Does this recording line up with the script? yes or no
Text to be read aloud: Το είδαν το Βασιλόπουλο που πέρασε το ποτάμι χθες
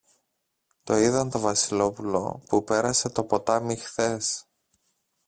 yes